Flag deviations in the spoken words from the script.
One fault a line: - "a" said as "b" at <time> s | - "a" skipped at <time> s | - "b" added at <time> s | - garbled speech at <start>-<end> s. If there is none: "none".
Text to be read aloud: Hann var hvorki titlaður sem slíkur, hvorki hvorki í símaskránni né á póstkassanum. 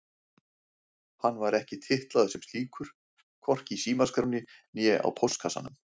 - "hvorki" said as "ekki" at 1.6 s
- "hvorki" skipped at 3.8 s